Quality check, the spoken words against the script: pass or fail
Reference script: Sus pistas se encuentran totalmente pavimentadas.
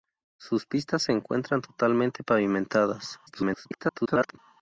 fail